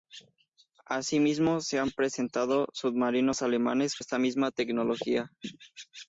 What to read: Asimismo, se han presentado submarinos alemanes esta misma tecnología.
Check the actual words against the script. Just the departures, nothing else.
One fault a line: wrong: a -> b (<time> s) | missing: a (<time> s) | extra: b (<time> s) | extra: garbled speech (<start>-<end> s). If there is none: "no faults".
no faults